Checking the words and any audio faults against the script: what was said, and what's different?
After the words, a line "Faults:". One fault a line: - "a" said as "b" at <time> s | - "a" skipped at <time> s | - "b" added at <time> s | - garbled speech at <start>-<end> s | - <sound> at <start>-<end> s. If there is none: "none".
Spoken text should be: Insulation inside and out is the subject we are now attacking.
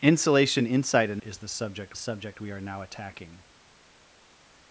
Insulation inside and is the subject subject we are now attacking.
Faults:
- "out" skipped at 1.2 s
- "subject" added at 1.9 s